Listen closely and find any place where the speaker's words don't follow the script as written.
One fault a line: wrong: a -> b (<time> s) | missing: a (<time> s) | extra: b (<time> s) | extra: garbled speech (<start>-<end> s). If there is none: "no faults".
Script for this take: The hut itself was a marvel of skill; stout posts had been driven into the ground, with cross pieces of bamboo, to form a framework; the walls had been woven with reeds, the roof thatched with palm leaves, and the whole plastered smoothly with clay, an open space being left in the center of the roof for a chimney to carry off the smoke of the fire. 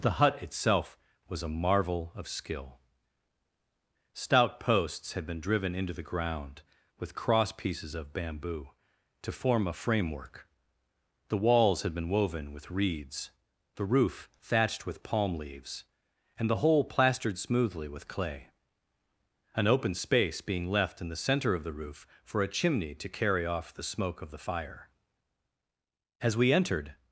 extra: As we entered (26.2 s)